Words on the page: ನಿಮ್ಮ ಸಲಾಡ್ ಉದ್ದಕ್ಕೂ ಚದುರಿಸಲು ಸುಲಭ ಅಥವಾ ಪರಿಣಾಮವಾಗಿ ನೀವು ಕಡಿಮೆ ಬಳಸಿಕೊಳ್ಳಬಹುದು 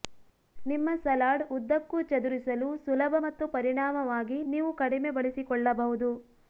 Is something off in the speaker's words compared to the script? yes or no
yes